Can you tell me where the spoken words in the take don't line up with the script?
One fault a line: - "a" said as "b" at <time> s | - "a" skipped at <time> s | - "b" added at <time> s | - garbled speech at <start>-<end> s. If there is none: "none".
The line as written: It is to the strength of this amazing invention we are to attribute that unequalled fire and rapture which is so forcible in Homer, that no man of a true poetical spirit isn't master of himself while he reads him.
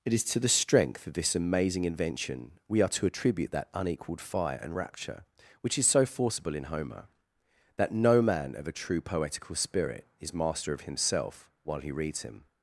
- "isn't" said as "is" at 10.2 s